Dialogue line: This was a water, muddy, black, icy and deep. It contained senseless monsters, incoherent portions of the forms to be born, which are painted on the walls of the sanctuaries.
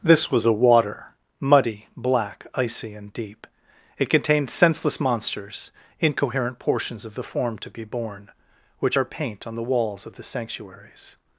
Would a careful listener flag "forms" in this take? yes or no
yes